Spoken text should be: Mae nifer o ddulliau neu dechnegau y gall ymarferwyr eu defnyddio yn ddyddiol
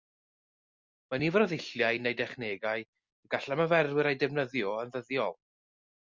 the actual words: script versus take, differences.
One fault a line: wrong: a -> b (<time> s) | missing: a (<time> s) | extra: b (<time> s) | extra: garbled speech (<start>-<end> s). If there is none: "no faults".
no faults